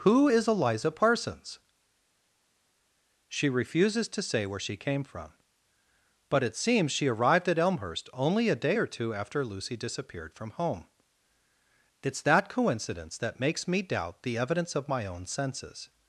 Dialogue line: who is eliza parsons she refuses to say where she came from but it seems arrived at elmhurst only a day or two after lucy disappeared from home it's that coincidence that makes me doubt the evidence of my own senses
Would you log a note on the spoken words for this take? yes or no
yes